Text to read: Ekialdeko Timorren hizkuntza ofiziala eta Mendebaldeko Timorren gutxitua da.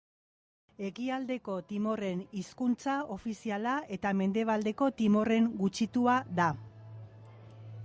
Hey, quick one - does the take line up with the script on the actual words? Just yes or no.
yes